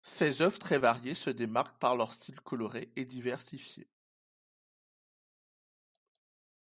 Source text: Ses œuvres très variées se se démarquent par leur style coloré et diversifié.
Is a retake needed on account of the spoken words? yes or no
yes